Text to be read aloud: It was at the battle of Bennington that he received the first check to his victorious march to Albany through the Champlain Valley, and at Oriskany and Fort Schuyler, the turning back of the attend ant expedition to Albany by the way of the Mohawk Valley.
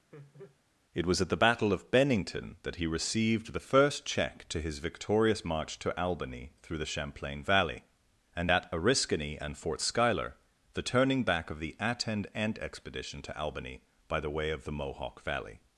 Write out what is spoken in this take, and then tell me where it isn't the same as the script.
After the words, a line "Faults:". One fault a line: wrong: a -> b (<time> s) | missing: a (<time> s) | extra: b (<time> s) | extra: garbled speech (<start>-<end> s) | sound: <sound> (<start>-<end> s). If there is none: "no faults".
It was at the battle of Bennington that he received the first check to his victorious march to Albany through the Champlain Valley, and at Oriskany and Fort Schuyler, the turning back of the attend ant expedition to Albany by the way of the Mohawk Valley.
Faults:
sound: laugh (0.1-0.6 s)